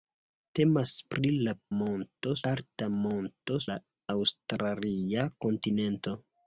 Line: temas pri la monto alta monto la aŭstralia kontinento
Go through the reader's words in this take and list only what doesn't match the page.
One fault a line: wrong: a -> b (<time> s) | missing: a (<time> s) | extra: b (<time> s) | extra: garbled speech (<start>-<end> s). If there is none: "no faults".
no faults